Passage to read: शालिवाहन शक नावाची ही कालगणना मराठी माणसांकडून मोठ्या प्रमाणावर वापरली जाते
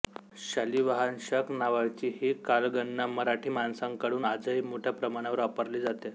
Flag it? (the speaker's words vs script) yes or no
yes